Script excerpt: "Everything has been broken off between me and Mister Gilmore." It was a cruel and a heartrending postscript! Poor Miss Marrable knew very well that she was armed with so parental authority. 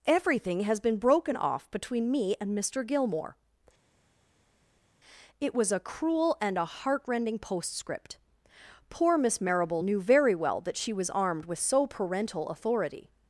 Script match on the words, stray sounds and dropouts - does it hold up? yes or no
yes